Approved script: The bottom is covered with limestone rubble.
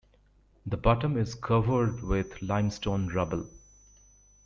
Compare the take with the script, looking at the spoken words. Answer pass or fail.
pass